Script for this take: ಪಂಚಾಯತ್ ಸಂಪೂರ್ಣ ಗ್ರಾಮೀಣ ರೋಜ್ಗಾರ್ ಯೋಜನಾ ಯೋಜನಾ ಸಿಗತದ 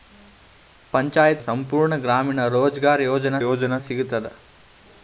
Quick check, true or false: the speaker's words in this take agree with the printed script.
true